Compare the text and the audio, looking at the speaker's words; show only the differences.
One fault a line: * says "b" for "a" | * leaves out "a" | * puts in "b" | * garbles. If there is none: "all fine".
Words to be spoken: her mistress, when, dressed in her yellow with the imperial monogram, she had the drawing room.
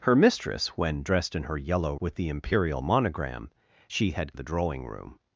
all fine